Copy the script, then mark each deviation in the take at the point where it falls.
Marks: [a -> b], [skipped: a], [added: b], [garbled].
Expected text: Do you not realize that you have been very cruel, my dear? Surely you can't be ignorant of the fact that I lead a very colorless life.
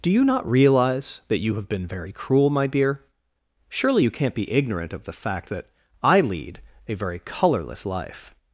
Do you not realize that you have been very cruel, my dear? Surely you can't be ignorant of the fact that I lead a very colorless life.